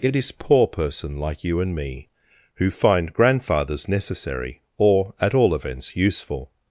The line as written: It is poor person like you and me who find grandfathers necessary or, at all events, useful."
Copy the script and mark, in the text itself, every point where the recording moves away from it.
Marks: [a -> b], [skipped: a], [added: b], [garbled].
It is poor person like you and me who find grandfathers necessary or, at all events, useful."